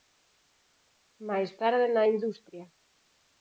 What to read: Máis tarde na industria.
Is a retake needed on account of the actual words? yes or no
no